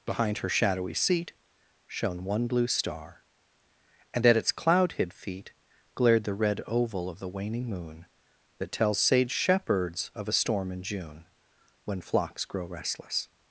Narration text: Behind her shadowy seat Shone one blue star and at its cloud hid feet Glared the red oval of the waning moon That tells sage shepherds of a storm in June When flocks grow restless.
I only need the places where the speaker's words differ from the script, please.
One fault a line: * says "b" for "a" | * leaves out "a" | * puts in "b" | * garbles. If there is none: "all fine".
all fine